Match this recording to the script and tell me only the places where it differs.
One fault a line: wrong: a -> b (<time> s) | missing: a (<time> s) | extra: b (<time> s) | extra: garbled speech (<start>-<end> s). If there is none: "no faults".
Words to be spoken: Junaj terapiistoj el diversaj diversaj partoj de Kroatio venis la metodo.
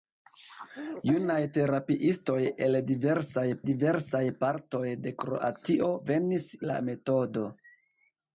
no faults